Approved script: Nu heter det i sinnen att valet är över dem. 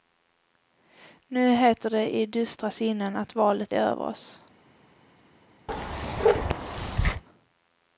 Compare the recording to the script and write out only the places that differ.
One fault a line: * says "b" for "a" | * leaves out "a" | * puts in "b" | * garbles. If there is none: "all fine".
* puts in "dystra"
* says "oss" for "dem"